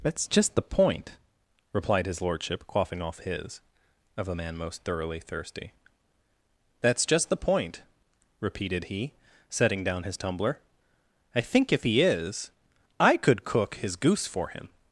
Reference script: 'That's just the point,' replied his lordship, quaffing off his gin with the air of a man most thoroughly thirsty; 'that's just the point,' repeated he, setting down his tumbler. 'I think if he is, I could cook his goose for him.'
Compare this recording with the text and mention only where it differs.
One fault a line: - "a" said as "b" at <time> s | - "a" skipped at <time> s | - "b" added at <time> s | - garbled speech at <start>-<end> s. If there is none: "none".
- "gin with the air" skipped at 3.6 s